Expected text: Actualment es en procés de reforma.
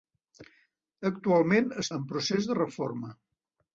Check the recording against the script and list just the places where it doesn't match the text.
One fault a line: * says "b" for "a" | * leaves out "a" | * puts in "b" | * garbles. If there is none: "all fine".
all fine